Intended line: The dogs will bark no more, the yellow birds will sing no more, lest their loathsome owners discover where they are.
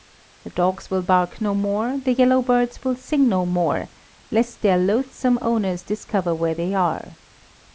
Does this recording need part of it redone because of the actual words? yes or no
no